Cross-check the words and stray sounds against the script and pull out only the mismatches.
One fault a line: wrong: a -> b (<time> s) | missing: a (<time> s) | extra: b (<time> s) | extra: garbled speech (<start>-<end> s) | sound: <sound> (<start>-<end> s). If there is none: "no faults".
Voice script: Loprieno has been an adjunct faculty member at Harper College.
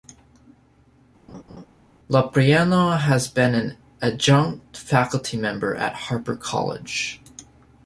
sound: laugh (1.3-1.7 s)